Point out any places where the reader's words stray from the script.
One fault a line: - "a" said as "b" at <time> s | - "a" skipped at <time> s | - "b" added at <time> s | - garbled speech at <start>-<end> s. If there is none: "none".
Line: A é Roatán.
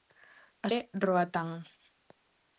none